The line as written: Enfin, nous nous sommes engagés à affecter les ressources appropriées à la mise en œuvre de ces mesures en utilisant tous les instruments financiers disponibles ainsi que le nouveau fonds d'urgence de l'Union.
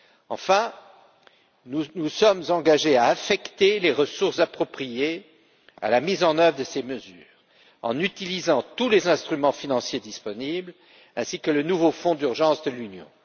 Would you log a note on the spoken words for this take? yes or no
no